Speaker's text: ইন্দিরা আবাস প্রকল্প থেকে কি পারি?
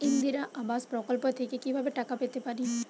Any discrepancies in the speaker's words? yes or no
yes